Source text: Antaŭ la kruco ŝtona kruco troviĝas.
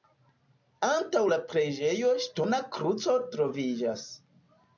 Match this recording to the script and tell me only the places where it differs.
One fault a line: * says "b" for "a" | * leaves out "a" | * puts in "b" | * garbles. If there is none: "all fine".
* says "preĝejo" for "kruco"